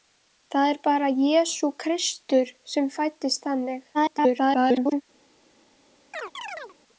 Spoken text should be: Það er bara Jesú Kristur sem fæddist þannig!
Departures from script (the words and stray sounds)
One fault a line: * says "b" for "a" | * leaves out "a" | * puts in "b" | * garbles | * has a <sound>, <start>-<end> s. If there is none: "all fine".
* garbles
* has a chirp, 6.1-6.8 s